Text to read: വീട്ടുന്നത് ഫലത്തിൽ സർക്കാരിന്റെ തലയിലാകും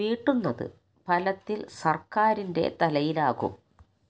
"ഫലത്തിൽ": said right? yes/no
yes